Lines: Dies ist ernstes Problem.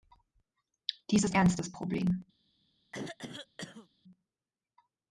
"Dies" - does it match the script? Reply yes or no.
yes